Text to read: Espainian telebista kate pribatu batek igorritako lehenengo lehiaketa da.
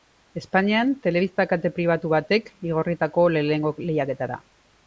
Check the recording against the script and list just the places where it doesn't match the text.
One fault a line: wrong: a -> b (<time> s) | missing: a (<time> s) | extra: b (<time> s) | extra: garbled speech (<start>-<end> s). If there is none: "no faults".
no faults